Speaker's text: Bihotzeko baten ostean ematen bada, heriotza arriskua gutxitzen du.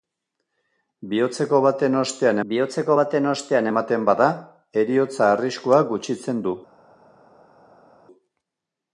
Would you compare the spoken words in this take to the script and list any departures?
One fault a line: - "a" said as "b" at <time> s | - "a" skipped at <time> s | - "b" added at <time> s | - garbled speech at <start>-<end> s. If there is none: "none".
- "bihotzeko baten ostean" added at 2.5 s